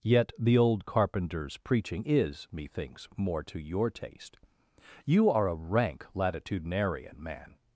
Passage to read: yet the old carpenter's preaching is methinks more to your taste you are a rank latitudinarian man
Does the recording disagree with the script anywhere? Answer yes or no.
no